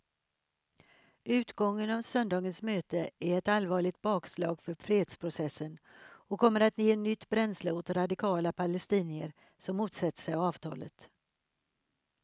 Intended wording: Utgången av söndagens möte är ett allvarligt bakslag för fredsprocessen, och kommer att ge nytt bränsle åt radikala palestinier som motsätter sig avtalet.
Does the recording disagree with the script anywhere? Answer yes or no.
no